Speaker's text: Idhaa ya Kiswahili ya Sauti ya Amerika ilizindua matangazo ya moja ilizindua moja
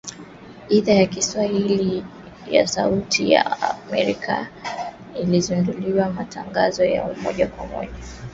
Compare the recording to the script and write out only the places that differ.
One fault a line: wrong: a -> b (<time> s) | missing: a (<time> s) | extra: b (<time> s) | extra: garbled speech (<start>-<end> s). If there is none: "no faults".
wrong: ilizindua -> kwa (7.5 s)